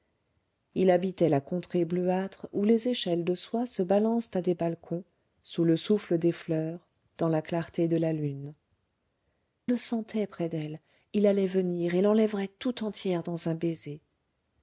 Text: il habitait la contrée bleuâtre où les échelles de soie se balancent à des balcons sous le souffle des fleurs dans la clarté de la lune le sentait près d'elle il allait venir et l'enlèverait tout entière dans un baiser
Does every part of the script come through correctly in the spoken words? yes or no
yes